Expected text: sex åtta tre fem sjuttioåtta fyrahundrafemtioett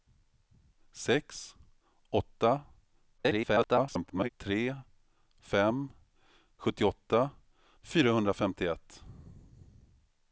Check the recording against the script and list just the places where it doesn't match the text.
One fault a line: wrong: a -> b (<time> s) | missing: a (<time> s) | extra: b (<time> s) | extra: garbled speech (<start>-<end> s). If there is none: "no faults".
extra: garbled speech (3.2-4.3 s)